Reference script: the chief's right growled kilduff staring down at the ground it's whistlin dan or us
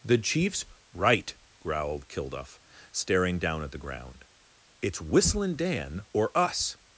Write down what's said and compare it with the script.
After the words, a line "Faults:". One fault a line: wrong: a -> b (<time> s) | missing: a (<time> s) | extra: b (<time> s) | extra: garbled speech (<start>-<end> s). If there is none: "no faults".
the chief's right growled kilduff staring down at the ground it's whistlin dan or us
Faults:
no faults